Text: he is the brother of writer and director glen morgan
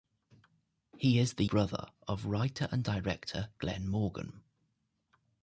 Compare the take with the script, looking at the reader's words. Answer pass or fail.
pass